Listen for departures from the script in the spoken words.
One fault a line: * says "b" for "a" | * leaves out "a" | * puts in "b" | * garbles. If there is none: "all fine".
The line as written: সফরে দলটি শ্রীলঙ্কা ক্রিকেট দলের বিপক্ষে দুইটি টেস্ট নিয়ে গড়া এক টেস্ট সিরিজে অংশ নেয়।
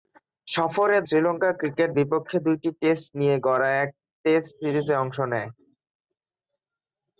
* leaves out "দলটি"
* leaves out "দলের"